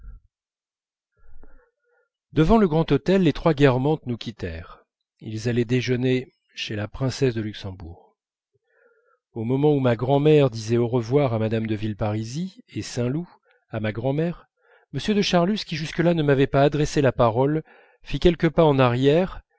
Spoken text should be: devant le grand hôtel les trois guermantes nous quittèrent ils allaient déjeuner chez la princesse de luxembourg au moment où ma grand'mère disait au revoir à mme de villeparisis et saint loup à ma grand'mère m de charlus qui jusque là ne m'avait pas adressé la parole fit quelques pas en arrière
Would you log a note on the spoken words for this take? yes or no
no